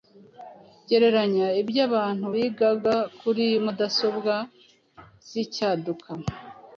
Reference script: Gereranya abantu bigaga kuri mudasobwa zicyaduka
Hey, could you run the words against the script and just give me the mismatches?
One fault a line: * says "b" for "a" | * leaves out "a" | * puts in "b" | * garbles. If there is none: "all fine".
* puts in "ibyo"